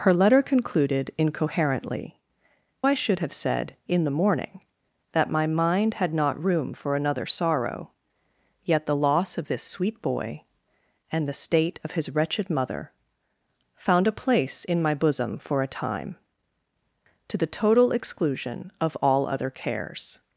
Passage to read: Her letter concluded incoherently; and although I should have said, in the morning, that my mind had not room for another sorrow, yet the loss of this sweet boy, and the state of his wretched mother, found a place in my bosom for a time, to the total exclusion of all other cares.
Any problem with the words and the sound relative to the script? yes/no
yes